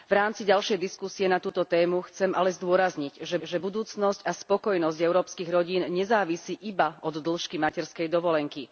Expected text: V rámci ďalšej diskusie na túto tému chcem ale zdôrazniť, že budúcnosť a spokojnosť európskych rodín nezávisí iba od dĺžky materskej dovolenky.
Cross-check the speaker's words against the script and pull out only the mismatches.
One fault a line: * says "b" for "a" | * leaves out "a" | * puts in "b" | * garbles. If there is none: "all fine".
* puts in "že"